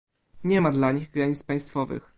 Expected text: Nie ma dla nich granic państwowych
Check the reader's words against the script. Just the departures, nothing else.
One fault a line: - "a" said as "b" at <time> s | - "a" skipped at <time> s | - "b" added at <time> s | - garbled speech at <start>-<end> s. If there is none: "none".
none